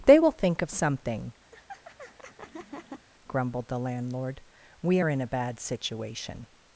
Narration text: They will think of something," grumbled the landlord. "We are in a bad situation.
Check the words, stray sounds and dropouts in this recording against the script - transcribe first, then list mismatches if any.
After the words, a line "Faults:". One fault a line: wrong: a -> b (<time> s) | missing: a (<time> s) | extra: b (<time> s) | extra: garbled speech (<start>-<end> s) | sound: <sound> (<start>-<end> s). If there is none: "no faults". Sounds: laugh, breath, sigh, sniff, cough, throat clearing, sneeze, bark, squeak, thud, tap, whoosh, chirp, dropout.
They will think of something," grumbled the landlord. "We are in a bad situation.
Faults:
sound: laugh (1.5-3.1 s)